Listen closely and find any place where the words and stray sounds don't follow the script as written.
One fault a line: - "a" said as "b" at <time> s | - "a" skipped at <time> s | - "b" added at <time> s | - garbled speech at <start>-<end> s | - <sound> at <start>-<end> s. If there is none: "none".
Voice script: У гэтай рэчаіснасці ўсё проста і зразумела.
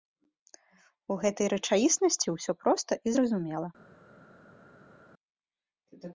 none